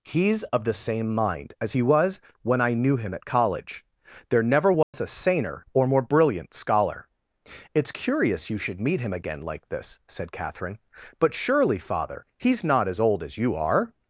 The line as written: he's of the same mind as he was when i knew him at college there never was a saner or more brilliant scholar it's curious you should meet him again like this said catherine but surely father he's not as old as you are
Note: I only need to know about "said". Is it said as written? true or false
true